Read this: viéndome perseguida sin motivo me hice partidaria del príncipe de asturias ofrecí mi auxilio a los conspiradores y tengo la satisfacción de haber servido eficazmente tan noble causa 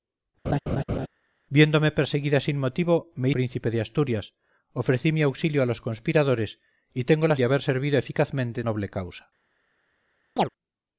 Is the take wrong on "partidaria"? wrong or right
wrong